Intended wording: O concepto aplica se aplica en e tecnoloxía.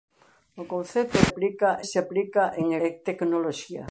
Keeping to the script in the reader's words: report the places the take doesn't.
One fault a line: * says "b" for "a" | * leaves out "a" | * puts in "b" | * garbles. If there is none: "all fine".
all fine